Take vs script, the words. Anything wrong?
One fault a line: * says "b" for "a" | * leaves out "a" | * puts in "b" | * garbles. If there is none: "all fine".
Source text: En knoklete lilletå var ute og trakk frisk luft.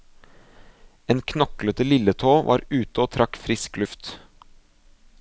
all fine